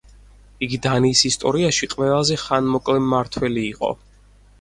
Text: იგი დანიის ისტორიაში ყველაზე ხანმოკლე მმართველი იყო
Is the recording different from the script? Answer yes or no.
no